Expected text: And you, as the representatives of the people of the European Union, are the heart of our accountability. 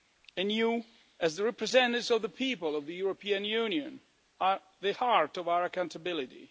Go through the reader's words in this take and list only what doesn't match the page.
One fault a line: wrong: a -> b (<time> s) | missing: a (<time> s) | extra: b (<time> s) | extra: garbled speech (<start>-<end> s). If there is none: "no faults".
no faults